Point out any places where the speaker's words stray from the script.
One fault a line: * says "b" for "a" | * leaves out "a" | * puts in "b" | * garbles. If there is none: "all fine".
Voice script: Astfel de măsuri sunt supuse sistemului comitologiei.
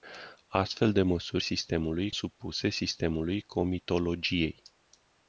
* says "sistemului" for "sunt"